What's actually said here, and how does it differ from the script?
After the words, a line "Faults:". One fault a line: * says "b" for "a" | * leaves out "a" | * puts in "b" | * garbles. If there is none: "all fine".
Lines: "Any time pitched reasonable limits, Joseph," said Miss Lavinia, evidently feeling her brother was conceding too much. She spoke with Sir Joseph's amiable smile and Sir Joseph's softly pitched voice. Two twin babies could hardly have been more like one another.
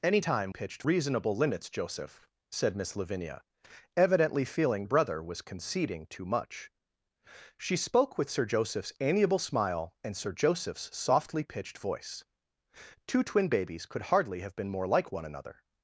"Any time pitched reasonable limits, Joseph," said Miss Lavinia, evidently feeling her brother was conceding too much. She spoke with Sir Joseph's amiable smile and Sir Joseph's softly pitched voice. Two twin babies could hardly have been more like one another.
Faults:
all fine